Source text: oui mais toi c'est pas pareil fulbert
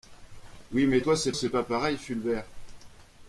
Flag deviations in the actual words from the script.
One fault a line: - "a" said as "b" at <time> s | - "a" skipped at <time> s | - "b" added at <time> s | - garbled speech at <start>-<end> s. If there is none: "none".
- "c'est" added at 1.3 s